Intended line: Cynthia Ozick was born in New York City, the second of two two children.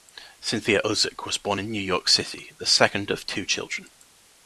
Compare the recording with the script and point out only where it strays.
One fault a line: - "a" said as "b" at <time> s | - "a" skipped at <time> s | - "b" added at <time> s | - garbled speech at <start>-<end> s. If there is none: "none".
- "two" skipped at 3.5 s